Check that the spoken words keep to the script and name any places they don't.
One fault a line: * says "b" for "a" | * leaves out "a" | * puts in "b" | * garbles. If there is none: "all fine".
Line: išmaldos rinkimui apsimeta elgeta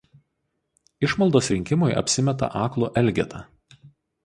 * puts in "aklu"